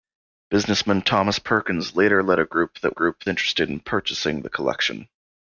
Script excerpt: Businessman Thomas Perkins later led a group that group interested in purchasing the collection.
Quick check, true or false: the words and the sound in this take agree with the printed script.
true